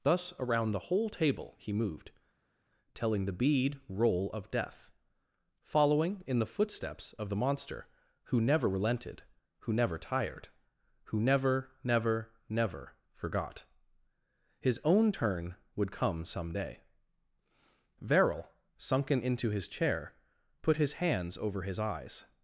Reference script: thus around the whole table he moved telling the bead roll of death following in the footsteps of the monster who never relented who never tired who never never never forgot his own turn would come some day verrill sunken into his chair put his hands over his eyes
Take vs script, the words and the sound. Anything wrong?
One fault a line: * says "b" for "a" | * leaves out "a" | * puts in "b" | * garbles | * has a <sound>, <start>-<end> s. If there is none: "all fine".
all fine